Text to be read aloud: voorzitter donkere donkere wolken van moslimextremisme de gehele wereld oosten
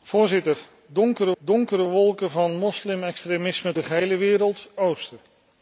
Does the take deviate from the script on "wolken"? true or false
false